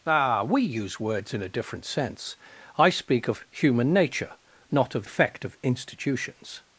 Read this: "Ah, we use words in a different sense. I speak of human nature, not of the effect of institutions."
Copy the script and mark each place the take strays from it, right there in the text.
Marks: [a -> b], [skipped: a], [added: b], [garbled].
"Ah, we use words in a different sense. I speak of human nature, not of [skipped: the] effect of institutions."